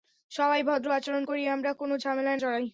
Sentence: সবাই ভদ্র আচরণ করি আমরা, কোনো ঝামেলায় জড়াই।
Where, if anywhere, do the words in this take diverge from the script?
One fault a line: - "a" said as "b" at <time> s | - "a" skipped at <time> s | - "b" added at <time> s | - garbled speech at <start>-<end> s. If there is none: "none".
none